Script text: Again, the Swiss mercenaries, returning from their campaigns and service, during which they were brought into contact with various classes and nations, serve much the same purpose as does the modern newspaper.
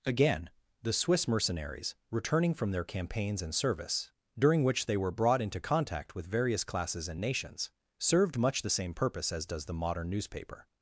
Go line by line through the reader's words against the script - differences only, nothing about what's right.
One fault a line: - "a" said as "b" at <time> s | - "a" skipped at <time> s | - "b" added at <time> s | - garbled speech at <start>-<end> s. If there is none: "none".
- "serve" said as "served" at 8.0 s